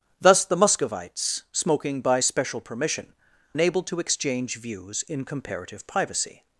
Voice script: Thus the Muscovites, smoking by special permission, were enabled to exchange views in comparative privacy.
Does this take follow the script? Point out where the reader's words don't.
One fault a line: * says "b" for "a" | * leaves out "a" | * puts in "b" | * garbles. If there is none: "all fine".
* leaves out "were"